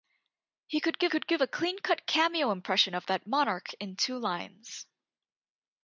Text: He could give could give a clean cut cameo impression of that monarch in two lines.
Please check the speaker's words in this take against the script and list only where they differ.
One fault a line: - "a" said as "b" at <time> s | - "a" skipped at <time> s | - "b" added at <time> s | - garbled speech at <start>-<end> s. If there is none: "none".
none